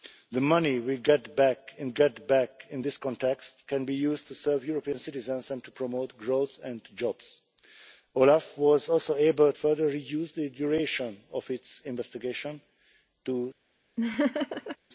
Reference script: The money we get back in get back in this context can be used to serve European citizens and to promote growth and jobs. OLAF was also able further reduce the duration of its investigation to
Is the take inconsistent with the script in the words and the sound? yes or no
yes